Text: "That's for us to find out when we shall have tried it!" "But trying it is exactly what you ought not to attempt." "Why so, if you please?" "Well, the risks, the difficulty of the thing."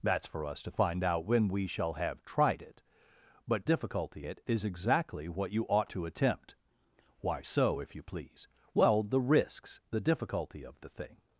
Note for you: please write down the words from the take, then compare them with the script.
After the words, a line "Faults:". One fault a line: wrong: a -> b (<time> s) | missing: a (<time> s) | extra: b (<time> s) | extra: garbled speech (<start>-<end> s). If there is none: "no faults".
"That's for us to find out when we shall have tried it!" "But difficulty it is exactly what you ought to attempt." "Why so, if you please?" "Well, the risks, the difficulty of the thing."
Faults:
wrong: trying -> difficulty (3.6 s)
missing: not (5.9 s)